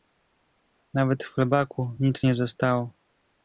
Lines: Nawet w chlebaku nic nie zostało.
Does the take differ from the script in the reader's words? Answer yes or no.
no